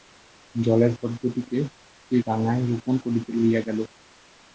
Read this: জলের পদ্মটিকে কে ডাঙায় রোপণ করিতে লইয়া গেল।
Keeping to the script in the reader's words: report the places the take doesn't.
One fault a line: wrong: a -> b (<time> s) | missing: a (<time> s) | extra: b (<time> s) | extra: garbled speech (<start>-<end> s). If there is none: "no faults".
no faults